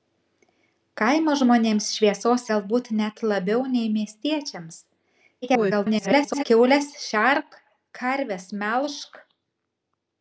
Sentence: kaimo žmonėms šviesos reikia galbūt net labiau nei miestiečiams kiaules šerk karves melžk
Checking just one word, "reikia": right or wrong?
wrong